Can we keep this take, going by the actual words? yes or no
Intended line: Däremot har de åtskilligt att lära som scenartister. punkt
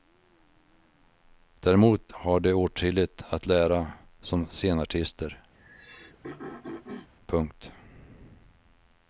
yes